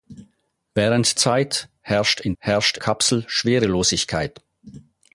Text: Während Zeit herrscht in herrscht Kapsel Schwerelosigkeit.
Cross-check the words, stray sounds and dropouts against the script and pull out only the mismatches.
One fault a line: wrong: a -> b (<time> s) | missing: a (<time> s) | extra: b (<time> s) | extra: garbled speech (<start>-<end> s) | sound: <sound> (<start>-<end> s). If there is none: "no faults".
no faults